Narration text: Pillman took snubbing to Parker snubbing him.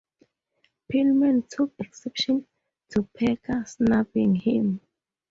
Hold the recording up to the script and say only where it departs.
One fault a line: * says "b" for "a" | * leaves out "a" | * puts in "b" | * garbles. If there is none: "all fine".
* says "exception" for "snubbing"